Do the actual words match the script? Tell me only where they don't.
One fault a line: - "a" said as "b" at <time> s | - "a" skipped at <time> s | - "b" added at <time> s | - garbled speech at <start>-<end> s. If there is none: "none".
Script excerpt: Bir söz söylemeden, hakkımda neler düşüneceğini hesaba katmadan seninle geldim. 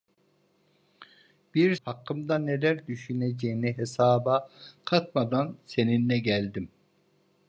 - "söz söylemeden" skipped at 1.8 s